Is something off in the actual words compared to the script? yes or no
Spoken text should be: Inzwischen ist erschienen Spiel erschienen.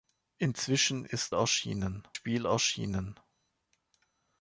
no